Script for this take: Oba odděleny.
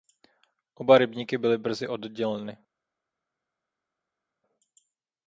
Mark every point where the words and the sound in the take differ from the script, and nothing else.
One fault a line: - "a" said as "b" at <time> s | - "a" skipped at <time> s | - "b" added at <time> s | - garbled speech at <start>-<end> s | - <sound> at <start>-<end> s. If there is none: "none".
- "rybníky byly brzy" added at 1.0 s